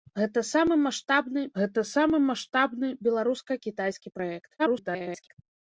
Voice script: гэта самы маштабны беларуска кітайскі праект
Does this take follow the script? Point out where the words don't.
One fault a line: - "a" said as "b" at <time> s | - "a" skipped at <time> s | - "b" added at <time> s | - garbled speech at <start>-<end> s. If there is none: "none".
- "гэта самы маштабны" added at 1.6 s
- garbled speech at 4.6-5.4 s